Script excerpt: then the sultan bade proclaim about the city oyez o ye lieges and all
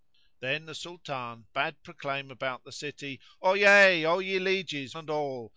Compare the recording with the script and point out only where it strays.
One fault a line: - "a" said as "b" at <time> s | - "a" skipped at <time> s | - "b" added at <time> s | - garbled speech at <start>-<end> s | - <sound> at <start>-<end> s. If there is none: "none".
none